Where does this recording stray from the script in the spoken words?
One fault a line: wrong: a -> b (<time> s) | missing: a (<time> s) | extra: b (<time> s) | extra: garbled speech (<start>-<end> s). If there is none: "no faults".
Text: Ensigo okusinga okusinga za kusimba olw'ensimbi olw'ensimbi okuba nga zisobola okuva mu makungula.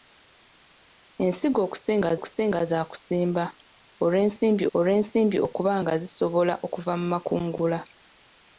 no faults